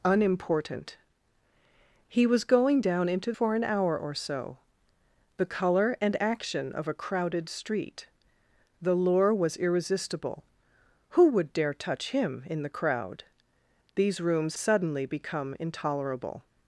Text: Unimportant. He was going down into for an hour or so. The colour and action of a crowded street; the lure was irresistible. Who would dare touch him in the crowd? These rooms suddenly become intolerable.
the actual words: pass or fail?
pass